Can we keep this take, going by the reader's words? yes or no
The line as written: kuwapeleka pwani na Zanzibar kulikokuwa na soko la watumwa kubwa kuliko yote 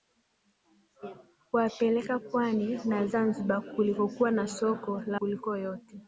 no